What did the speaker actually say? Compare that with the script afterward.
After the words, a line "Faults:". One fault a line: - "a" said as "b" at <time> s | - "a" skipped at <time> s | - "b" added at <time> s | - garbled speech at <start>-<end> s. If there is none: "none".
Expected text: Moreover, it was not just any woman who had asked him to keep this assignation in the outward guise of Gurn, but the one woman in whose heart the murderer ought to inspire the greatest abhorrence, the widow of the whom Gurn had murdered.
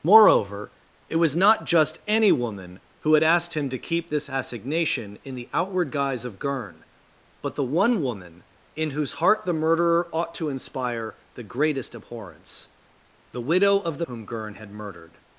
Moreover, it was not just any woman who had asked him to keep this assignation in the outward guise of Gurn, but the one woman in whose heart the murderer ought to inspire the greatest abhorrence, the widow of the whom Gurn had murdered.
Faults:
none